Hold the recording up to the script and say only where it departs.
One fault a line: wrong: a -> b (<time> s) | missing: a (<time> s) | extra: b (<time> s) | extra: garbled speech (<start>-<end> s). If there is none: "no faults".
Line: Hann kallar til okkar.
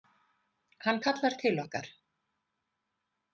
no faults